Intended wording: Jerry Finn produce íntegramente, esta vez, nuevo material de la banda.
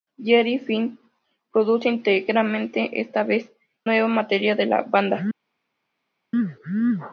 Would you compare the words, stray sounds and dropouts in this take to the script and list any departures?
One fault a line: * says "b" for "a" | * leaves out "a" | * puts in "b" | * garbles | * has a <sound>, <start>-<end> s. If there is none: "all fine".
all fine